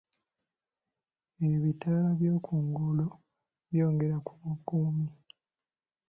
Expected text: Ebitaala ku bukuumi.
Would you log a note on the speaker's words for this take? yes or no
yes